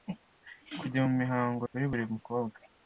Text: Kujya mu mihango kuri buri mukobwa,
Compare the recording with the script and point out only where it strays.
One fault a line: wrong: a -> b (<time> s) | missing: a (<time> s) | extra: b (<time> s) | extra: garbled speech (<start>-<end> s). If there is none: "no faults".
no faults